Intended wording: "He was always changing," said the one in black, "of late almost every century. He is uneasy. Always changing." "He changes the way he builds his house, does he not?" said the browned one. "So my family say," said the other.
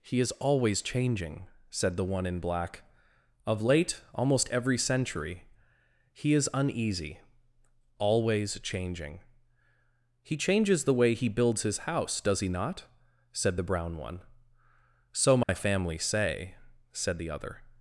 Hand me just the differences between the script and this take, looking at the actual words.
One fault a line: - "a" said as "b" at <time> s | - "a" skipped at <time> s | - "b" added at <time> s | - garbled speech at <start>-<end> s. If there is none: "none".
- "was" said as "is" at 0.2 s
- "browned" said as "brown" at 13.7 s